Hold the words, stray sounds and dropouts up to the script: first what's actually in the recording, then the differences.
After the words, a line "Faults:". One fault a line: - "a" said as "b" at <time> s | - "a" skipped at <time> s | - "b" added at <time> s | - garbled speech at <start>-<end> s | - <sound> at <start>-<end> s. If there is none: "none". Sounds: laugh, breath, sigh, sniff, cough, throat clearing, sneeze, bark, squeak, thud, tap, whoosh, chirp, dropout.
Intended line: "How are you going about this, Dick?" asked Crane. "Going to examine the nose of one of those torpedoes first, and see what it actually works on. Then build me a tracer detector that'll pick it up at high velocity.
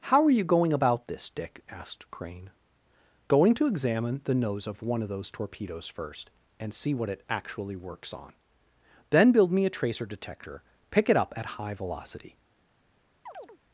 "How are you going about this, Dick?" asked Crane. "Going to examine the nose of one of those torpedoes first, and see what it actually works on. Then build me a tracer detector pick it up at high velocity.
Faults:
- "that'll" skipped at 10.6 s
- chirp at 13.3-13.6 s